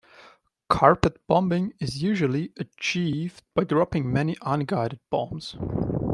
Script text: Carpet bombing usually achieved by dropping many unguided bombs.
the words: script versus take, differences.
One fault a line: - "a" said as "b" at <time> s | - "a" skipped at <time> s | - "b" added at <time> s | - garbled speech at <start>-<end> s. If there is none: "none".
- "is" added at 1.8 s